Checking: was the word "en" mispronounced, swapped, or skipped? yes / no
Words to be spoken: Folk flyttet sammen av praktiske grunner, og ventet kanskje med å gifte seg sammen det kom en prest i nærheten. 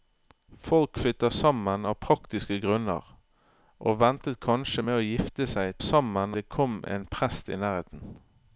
no